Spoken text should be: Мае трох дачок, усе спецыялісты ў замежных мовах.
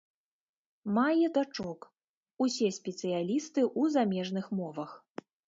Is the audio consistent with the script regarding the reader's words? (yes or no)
no